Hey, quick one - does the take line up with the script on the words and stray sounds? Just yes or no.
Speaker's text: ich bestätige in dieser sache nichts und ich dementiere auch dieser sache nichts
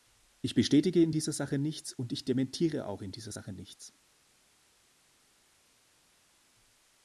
no